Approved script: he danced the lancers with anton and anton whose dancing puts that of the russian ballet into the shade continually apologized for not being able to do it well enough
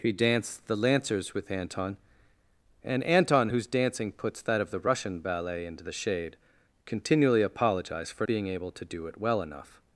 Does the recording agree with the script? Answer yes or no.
no